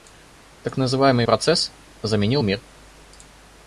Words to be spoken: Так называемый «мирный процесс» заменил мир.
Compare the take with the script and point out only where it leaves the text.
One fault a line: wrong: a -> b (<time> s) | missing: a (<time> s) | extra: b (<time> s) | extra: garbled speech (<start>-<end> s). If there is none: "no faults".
missing: мирный (1.3 s)